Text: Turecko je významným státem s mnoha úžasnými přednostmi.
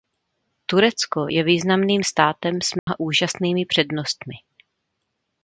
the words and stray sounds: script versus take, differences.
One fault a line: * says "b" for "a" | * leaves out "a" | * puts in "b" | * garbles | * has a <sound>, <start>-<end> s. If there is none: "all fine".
* has a dropout, 2.8-2.9 s